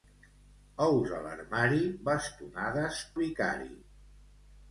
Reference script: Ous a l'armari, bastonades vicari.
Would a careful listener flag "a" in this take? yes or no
no